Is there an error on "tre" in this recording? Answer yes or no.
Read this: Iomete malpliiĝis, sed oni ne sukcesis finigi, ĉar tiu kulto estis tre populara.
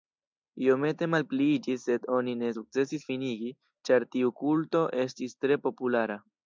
no